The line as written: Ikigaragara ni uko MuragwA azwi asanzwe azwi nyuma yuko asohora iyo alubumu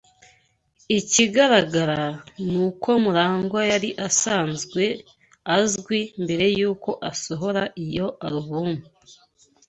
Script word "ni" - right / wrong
right